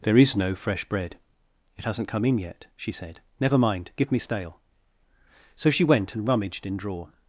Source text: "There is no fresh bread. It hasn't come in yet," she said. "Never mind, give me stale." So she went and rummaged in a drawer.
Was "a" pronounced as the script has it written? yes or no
no